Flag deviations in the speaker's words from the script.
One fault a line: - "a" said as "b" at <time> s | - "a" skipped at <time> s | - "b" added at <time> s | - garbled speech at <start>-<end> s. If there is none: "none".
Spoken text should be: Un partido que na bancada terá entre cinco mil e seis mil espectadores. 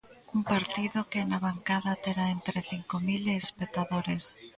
- "seis mil" skipped at 3.4 s